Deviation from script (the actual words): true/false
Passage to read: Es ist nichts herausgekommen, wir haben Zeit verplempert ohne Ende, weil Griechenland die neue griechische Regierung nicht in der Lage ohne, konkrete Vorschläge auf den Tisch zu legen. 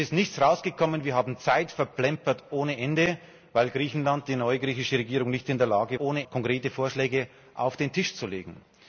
false